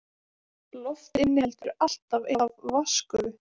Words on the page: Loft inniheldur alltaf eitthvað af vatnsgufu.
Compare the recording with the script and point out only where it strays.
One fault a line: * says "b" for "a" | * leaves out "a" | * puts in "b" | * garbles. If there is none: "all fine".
* leaves out "eitthvað"